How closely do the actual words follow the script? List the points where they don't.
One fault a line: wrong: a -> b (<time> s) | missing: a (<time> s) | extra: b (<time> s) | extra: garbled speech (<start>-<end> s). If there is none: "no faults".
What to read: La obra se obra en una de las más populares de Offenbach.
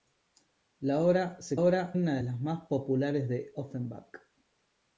no faults